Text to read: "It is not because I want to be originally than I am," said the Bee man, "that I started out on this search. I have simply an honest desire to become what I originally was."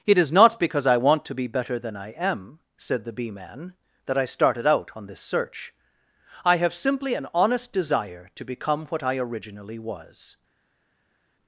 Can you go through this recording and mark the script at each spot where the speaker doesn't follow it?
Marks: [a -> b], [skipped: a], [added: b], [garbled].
"It is not because I want to be [originally -> better] than I am," said the Bee man, "that I started out on this search. I have simply an honest desire to become what I originally was."